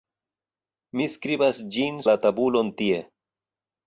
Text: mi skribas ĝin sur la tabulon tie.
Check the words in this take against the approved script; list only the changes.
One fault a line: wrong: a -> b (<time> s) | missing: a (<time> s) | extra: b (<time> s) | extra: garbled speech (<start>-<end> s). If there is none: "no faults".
missing: sur (2.0 s)